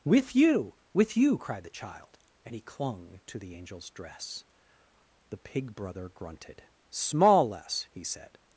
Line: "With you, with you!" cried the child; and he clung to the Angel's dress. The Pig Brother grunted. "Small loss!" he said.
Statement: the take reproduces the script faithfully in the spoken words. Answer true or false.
false